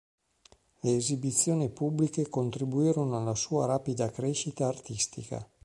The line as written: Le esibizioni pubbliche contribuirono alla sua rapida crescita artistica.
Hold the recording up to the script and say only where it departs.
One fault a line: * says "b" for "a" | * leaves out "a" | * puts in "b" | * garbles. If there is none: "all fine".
all fine